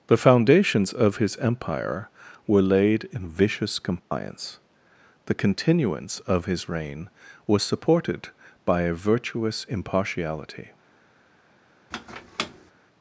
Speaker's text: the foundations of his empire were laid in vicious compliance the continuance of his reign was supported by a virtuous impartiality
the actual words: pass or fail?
pass